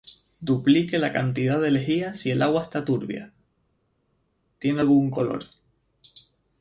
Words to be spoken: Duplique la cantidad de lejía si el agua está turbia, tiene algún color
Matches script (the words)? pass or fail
pass